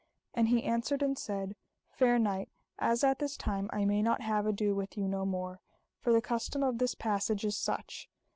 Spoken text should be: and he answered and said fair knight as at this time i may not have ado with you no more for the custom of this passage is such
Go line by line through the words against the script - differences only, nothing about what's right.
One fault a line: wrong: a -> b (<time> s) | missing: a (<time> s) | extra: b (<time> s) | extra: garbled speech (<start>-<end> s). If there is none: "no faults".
no faults